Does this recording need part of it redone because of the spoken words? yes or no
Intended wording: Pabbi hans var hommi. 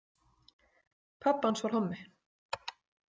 no